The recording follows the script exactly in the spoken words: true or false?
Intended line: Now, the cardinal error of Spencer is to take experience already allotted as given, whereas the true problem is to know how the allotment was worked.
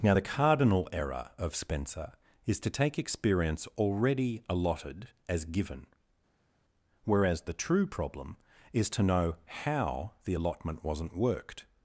false